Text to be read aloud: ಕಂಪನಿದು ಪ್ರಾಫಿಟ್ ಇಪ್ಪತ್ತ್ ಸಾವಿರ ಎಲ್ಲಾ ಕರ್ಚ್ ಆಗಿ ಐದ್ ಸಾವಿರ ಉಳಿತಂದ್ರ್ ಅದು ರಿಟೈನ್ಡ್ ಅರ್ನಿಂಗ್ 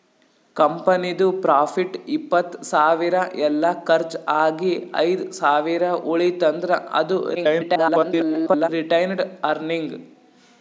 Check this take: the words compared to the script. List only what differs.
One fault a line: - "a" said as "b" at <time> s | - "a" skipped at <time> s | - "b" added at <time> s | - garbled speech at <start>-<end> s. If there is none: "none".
- garbled speech at 7.3-8.7 s